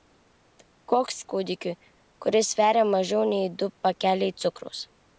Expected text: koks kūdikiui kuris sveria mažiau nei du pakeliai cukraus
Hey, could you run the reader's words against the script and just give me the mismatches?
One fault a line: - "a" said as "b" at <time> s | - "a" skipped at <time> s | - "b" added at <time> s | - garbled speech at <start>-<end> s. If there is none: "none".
none